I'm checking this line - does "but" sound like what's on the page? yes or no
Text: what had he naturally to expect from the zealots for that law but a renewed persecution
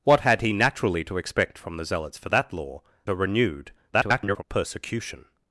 no